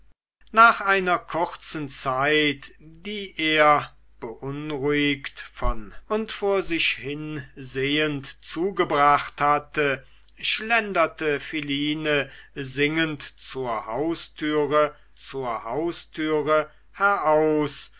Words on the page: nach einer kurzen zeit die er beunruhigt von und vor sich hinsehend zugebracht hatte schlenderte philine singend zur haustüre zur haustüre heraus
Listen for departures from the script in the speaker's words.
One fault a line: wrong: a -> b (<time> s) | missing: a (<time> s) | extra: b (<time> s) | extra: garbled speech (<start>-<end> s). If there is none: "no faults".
no faults